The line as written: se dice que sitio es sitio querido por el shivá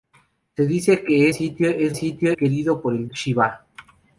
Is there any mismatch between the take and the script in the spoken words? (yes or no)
no